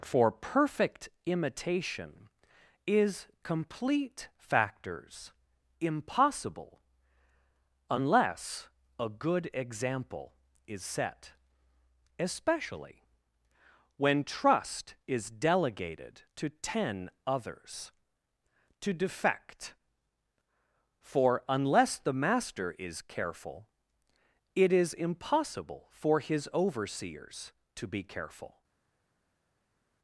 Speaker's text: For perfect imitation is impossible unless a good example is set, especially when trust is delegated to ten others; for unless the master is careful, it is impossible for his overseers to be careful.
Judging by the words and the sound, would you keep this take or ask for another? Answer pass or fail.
fail